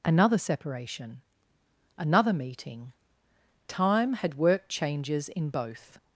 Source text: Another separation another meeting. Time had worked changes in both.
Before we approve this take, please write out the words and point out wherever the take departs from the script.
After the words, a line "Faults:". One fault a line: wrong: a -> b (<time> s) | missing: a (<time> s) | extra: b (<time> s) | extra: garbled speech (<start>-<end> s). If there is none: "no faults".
Another separation another meeting. Time had worked changes in both.
Faults:
no faults